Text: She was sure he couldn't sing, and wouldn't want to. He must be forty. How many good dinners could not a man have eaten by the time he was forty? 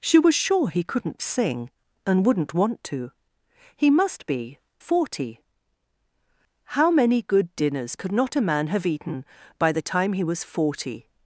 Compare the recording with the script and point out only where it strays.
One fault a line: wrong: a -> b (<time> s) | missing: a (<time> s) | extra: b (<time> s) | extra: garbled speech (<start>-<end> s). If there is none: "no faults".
no faults